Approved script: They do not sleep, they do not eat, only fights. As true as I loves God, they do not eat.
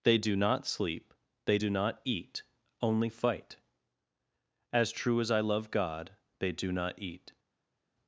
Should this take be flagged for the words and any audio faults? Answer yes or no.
yes